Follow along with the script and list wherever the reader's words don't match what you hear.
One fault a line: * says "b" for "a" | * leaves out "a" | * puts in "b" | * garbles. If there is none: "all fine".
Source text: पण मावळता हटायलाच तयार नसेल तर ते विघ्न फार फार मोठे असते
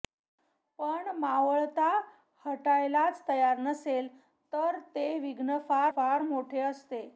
all fine